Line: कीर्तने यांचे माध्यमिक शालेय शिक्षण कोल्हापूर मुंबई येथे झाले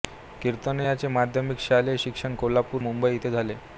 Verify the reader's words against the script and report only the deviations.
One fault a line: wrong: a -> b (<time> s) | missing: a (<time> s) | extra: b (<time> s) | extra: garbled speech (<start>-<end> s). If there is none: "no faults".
no faults